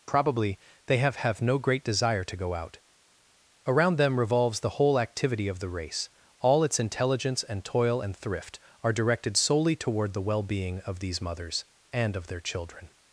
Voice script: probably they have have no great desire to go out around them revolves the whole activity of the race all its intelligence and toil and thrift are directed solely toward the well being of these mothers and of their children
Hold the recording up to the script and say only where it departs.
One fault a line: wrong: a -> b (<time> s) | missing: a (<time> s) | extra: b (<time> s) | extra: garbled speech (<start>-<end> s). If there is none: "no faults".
no faults